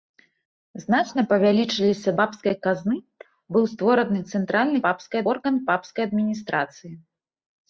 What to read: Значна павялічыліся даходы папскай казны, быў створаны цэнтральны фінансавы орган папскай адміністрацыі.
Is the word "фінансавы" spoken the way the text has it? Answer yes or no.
no